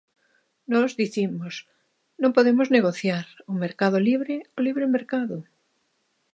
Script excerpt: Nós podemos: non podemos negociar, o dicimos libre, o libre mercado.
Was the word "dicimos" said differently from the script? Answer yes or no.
yes